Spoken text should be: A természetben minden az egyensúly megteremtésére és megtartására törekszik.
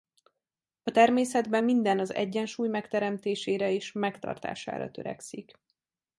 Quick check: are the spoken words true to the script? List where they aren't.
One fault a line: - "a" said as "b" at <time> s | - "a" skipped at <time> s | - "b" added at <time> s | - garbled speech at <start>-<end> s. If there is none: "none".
none